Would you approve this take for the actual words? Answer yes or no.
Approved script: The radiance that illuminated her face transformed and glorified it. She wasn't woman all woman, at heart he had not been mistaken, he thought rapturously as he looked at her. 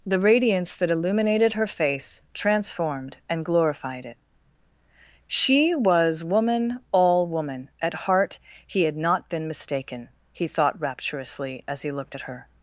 no